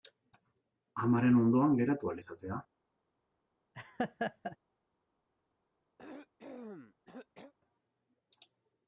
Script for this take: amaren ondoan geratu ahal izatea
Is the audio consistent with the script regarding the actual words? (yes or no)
yes